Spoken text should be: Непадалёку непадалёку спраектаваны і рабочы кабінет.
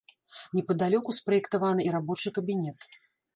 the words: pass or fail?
fail